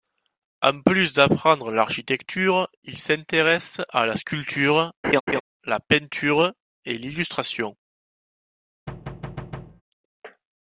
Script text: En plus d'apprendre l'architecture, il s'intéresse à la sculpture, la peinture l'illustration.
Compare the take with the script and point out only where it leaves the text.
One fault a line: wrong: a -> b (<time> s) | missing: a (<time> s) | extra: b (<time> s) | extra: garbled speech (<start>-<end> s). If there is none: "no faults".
extra: et (6.8 s)